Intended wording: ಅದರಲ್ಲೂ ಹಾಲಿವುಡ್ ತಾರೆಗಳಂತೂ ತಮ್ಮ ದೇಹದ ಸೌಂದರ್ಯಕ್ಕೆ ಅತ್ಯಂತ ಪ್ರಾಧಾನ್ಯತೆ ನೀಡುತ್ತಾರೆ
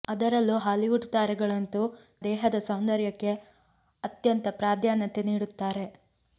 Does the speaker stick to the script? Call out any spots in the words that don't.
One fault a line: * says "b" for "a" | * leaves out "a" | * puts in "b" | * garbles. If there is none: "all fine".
* leaves out "ತಮ್ಮ"